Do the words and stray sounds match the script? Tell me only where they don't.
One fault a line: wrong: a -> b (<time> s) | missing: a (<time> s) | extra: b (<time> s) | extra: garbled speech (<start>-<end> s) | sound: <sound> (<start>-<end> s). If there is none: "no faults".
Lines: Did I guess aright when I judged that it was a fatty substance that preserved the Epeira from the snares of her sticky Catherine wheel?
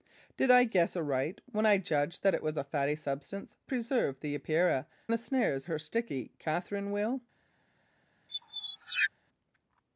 missing: that (3.5 s)
missing: from (4.9 s)
missing: of (5.6 s)
sound: squeak (8.3-9.1 s)